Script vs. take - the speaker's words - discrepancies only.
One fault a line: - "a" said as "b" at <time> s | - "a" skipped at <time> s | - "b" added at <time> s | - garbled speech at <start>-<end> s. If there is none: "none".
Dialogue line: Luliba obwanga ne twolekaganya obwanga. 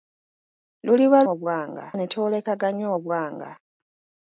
none